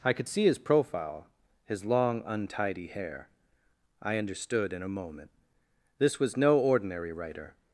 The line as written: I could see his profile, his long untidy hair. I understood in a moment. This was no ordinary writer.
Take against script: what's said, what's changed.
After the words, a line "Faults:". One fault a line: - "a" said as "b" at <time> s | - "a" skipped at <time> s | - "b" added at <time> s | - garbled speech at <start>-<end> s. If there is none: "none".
I could see his profile, his long untidy hair. I understood in a moment. This was no ordinary writer.
Faults:
none